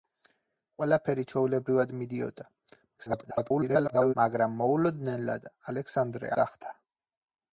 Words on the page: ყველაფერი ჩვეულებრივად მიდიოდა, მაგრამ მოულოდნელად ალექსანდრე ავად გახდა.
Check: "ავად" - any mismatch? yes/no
yes